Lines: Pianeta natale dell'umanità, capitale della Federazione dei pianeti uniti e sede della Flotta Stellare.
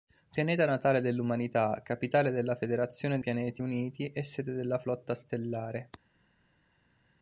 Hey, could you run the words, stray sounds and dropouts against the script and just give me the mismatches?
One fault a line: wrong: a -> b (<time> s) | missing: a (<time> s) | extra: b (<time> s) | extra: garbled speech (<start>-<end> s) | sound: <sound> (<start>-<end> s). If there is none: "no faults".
missing: dei (3.2 s)